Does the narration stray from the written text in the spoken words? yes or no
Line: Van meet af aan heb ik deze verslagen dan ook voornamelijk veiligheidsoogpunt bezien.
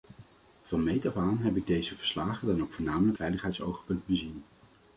no